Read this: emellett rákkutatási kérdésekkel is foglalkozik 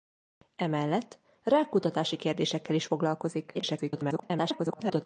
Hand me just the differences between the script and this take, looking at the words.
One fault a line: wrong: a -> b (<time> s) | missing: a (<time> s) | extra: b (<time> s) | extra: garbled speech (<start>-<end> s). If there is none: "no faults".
extra: garbled speech (3.5-5.1 s)